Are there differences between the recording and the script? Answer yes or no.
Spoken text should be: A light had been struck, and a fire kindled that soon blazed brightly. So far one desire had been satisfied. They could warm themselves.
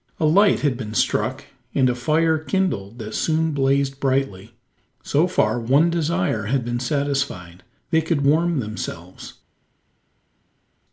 no